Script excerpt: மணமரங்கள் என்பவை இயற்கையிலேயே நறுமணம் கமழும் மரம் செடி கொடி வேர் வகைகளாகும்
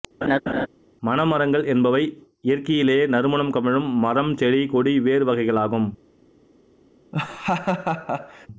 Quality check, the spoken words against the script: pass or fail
pass